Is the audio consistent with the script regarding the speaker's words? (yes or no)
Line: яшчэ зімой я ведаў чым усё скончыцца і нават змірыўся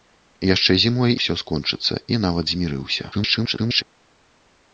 no